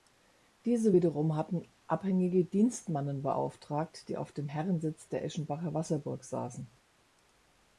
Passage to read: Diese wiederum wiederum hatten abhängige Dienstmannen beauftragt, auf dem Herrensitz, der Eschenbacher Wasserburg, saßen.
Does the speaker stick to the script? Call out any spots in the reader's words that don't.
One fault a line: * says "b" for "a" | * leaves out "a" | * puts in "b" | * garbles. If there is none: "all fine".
* leaves out "wiederum"
* puts in "die"